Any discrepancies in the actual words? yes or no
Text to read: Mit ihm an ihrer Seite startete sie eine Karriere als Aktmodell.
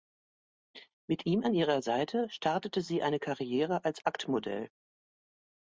no